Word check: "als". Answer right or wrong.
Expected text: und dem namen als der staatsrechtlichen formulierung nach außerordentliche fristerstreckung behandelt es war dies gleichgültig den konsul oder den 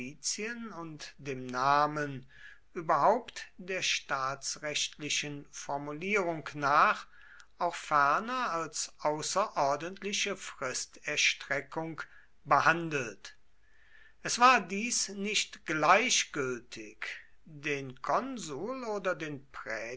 wrong